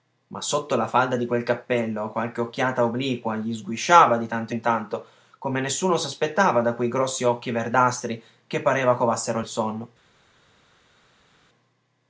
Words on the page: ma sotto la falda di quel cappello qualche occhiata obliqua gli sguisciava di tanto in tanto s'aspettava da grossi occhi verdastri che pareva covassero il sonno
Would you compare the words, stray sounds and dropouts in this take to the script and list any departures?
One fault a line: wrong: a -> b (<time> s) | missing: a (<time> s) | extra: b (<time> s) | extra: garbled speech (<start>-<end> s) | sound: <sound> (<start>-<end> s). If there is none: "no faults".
extra: come nessuno (5.4 s)
extra: quei (6.7 s)